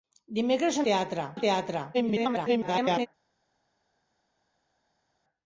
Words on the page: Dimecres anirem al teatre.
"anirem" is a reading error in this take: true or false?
true